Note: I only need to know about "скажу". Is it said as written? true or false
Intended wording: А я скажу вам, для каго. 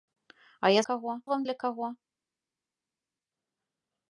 false